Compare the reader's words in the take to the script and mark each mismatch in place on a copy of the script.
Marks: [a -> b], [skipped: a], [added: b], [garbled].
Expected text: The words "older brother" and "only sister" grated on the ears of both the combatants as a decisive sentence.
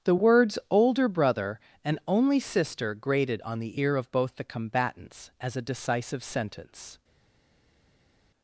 The words "older brother" and "only sister" grated on the [ears -> ear] of both the combatants as a decisive sentence.